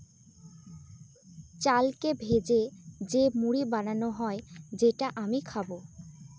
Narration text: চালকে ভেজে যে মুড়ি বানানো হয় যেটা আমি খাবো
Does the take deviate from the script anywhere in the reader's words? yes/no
no